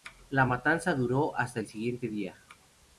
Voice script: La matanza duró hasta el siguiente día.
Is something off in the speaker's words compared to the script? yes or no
no